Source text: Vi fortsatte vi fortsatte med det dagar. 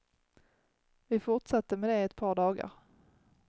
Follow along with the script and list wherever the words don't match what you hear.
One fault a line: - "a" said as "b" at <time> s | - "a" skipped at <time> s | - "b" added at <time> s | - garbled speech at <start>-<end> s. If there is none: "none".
- "vi fortsatte med det" said as "med det ett par" at 1.8 s